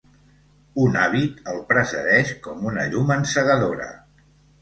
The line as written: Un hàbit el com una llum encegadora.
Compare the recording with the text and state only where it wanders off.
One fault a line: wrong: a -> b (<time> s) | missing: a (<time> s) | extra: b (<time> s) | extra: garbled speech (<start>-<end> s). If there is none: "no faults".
extra: precedeix (1.7 s)